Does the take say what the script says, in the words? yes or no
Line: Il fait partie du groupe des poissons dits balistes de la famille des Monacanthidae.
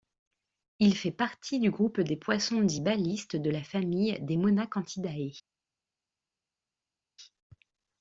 yes